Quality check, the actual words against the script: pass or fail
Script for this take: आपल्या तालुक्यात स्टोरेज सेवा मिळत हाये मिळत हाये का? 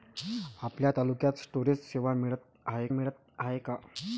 pass